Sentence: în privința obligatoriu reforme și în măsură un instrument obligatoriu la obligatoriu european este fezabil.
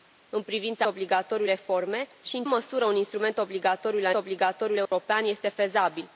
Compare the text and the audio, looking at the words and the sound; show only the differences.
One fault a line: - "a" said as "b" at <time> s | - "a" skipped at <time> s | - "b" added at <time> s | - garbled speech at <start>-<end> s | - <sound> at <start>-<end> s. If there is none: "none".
- dropout at 4.9-4.9 s